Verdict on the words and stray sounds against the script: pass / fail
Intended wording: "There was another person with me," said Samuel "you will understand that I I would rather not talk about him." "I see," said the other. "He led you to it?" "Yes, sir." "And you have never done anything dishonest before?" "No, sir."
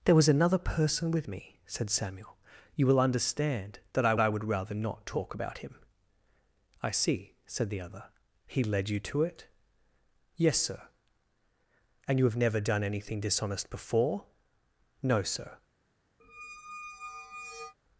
fail